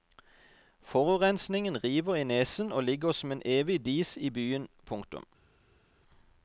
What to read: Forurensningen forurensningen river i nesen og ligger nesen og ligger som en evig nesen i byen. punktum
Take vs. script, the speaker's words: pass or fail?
fail